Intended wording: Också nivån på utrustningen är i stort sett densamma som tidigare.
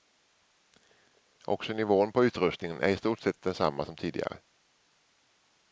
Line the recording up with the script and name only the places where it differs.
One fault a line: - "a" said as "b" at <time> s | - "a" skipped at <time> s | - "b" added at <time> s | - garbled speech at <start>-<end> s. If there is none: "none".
none